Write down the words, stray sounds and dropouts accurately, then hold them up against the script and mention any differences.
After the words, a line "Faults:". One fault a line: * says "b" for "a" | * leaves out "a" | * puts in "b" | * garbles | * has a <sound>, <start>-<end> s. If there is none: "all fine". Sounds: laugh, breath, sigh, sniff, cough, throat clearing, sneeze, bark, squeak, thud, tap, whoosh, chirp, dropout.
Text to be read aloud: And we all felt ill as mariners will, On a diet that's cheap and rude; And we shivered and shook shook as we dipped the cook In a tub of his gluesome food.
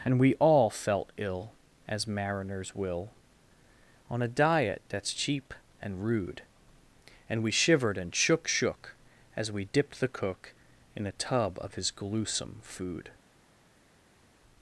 And we all felt ill as mariners will, On a diet that's cheap and rude; And we shivered and shook shook as we dipped the cook In a tub of his gluesome food.
Faults:
all fine